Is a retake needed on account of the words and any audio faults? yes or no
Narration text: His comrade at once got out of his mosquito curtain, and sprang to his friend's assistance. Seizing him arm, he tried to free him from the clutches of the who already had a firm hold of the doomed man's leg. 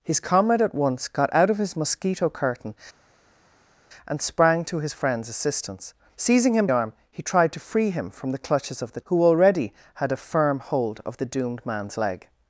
no